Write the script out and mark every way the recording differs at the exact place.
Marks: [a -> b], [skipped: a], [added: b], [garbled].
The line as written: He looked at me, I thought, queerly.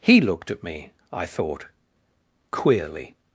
He looked at me, I thought, queerly.